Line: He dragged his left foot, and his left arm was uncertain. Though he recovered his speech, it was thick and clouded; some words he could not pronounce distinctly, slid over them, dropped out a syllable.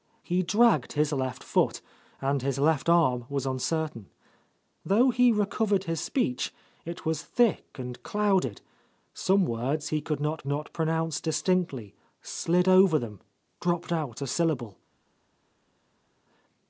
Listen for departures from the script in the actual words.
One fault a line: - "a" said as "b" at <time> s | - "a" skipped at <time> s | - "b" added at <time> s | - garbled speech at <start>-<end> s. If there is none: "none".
- "not" added at 10.4 s